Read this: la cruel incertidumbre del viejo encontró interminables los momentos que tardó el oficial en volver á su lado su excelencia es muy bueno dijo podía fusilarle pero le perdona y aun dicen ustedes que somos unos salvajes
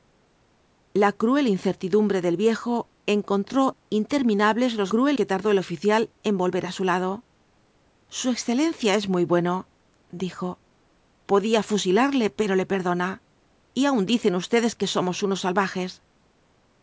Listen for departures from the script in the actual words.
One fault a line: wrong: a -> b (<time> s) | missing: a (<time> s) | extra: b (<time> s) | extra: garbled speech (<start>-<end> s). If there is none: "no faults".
wrong: momentos -> cruel (4.9 s)